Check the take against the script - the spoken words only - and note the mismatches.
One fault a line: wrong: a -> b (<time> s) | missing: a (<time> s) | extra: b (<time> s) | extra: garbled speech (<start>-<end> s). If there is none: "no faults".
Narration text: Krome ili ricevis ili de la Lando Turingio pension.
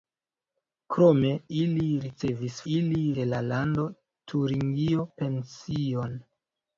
no faults